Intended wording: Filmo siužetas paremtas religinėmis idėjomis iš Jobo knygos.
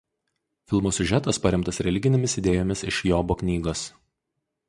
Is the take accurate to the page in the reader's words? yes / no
yes